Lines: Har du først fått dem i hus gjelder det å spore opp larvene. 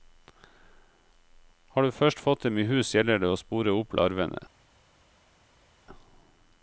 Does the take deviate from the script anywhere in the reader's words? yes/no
no